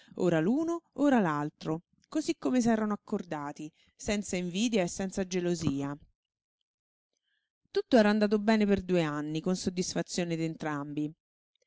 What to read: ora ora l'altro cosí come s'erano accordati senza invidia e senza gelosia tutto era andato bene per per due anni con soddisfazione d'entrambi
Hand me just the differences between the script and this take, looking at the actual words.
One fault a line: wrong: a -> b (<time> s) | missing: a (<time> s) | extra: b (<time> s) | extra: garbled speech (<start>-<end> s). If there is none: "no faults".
extra: l'uno (0.4 s)
missing: per (8.8 s)